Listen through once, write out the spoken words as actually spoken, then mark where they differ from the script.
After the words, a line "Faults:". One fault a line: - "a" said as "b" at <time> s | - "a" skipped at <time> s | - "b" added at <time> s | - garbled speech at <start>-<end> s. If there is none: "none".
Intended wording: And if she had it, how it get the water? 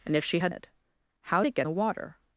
And if she had it, how it get the water?
Faults:
none